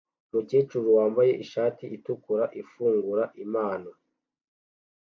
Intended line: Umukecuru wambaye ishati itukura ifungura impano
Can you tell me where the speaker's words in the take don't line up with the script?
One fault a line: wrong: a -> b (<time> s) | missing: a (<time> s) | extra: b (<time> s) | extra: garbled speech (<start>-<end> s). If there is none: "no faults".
no faults